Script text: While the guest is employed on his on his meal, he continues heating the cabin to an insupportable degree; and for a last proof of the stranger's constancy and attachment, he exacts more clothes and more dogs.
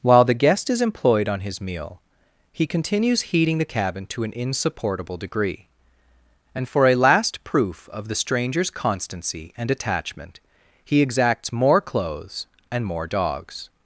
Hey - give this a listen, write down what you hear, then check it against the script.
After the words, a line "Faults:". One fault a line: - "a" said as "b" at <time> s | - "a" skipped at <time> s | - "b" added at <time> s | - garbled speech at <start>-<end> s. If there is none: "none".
While the guest is employed on his meal, he continues heating the cabin to an insupportable degree; and for a last proof of the stranger's constancy and attachment, he exacts more clothes and more dogs.
Faults:
- "on his" skipped at 1.6 s